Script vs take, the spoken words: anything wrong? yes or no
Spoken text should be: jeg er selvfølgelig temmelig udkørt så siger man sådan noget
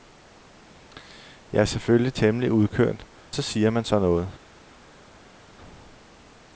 no